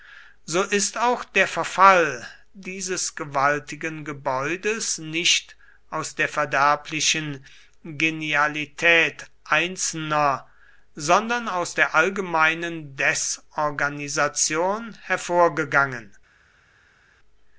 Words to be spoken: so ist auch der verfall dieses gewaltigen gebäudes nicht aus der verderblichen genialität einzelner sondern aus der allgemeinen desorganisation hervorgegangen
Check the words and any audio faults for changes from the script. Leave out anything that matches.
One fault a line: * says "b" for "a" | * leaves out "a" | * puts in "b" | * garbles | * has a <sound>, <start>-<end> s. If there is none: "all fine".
all fine